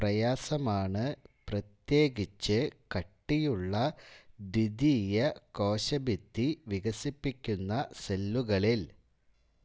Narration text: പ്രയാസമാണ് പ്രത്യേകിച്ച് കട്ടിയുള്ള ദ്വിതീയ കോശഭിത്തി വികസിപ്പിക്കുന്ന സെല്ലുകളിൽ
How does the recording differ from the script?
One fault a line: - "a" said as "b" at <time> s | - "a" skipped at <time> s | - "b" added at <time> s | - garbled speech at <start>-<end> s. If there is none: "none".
none